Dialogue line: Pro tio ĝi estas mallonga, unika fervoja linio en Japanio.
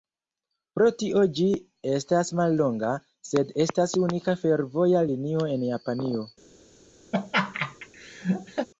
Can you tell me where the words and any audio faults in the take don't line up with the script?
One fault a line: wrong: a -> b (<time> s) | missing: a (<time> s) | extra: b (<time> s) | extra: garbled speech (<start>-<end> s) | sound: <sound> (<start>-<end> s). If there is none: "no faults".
extra: sed estas (3.3 s)
sound: laugh (7.1-8.7 s)